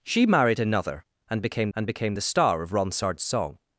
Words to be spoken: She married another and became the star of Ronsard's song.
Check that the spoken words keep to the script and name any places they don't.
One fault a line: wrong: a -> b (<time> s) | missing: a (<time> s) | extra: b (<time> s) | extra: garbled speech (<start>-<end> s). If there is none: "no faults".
extra: and became (1.7 s)